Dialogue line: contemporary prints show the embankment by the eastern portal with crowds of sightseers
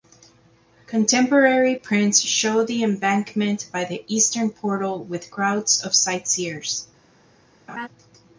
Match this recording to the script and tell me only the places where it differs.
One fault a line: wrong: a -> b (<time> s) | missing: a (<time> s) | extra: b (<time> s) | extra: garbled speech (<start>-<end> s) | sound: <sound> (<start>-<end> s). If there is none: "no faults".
sound: laugh (7.7-7.9 s)